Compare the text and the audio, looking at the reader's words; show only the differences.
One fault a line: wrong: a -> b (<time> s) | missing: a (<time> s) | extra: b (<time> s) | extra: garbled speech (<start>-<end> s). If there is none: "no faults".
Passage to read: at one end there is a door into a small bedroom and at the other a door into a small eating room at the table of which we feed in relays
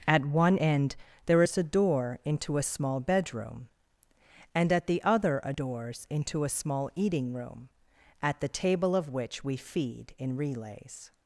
wrong: door -> doors (5.5 s)